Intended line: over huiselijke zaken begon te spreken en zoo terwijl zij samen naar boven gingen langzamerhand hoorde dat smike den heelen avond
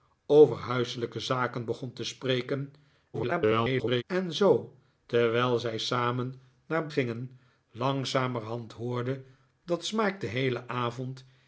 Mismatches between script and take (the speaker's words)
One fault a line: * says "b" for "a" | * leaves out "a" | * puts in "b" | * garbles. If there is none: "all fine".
* garbles
* leaves out "boven"